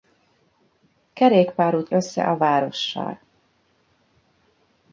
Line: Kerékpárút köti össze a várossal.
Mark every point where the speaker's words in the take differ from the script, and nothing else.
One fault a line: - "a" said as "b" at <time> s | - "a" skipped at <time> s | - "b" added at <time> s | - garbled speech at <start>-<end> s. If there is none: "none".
- "köti" skipped at 1.9 s